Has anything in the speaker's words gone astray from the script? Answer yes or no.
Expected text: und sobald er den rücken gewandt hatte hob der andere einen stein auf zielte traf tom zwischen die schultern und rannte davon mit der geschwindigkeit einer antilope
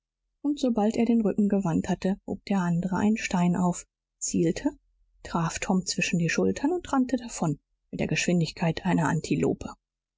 no